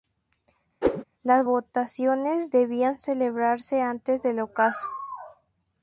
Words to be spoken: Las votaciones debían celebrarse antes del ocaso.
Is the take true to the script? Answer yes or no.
yes